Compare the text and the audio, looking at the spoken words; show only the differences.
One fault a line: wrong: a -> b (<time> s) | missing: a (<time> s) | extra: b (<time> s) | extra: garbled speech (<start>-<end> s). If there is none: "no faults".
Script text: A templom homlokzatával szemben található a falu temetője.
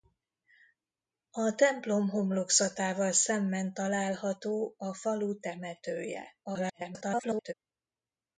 extra: garbled speech (6.4-7.5 s)